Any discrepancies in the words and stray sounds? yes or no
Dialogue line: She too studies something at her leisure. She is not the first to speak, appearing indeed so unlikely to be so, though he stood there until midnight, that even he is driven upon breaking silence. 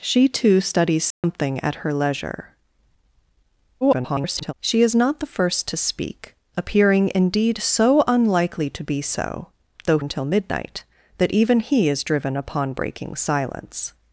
yes